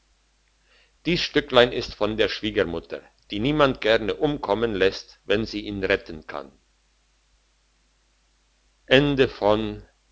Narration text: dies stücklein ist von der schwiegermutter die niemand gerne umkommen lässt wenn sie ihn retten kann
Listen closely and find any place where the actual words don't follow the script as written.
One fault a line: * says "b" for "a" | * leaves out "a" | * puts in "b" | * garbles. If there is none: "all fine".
all fine